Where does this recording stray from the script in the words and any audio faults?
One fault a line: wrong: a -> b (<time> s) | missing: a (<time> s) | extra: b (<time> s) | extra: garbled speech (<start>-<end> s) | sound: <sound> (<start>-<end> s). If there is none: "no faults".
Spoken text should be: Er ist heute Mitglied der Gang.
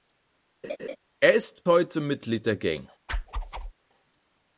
sound: laugh (0.6-1.0 s)
sound: whoosh (3.1-3.7 s)